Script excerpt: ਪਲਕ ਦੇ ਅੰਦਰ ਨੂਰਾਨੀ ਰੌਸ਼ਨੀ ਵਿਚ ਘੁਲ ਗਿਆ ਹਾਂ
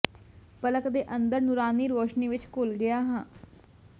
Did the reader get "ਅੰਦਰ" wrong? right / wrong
right